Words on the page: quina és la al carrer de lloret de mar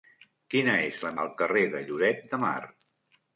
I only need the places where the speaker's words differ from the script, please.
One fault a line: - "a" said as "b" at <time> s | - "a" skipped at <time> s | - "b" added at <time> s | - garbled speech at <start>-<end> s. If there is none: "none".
none